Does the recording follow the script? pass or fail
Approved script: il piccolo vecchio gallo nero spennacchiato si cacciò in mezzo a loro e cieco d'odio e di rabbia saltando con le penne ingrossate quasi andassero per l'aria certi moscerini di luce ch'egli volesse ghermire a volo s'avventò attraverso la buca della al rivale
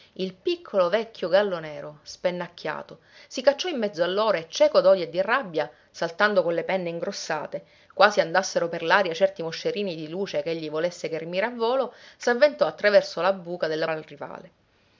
pass